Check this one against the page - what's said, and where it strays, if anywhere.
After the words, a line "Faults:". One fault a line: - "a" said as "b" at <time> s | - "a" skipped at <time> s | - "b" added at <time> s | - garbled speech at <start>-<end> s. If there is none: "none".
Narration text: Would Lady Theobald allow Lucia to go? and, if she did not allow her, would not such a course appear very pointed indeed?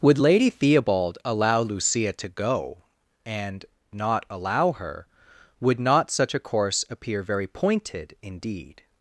Would Lady Theobald allow Lucia to go? and, not allow her, would not such a course appear very pointed indeed?
Faults:
- "if she did" skipped at 3.6 s